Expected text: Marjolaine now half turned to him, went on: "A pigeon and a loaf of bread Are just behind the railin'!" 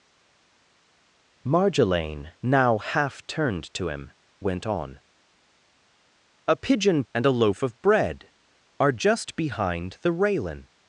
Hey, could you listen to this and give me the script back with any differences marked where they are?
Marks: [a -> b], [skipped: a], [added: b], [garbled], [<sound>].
Marjolaine now half turned to him, went on: "A pigeon and a loaf of bread Are just behind the railin'!"